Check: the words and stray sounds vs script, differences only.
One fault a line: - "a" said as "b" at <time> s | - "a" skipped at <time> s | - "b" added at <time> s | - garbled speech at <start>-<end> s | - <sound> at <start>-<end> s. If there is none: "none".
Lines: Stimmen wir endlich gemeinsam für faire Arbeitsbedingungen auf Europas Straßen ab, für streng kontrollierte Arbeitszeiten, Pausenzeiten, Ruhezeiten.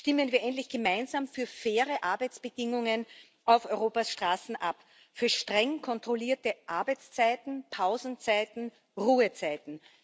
none